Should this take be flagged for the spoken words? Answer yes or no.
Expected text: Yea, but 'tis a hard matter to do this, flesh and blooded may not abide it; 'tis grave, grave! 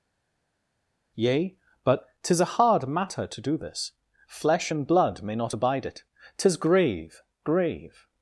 yes